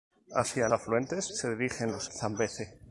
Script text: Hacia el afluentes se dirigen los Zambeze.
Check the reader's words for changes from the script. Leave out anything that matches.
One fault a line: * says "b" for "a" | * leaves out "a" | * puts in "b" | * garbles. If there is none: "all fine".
all fine